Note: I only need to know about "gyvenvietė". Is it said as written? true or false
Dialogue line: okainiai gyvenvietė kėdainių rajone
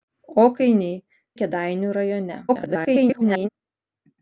false